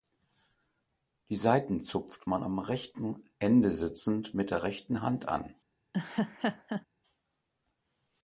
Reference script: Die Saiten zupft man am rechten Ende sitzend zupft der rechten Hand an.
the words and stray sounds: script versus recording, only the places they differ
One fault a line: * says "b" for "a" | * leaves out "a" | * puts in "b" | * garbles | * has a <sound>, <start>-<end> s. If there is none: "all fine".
* says "mit" for "zupft"
* has a laugh, 5.9-6.9 s